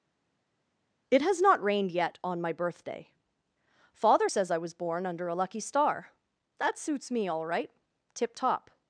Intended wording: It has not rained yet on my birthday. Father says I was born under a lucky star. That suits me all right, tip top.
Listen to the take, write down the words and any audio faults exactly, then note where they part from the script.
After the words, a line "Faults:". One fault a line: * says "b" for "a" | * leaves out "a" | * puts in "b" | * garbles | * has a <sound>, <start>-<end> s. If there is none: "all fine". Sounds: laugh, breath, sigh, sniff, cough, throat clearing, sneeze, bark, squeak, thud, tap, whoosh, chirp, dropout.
It has not rained yet on my birthday. Father says I was born under a lucky star. That suits me all right, tip top.
Faults:
all fine